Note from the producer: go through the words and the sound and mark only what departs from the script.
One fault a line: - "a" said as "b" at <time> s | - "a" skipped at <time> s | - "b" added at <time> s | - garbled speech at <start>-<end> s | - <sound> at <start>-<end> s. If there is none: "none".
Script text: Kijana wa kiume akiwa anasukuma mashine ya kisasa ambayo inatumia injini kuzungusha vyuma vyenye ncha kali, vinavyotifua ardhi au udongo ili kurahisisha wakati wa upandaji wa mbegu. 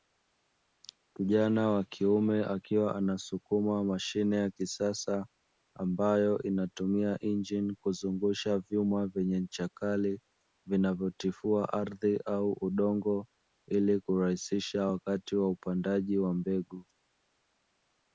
none